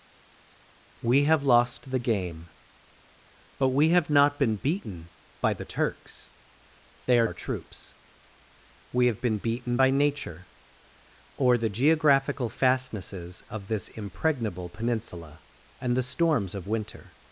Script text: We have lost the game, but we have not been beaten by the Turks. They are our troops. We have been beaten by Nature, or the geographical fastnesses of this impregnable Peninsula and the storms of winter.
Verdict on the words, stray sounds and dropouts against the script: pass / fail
pass